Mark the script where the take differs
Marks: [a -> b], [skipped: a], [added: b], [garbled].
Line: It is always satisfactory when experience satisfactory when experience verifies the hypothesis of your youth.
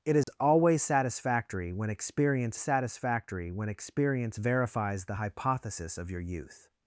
It is always satisfactory when experience satisfactory when experience verifies the hypothesis of your youth.